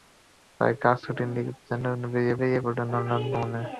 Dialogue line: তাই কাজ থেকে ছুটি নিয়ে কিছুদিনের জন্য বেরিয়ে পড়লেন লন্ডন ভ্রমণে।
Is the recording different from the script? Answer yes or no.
yes